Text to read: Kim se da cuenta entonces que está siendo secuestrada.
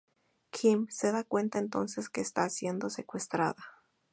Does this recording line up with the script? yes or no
yes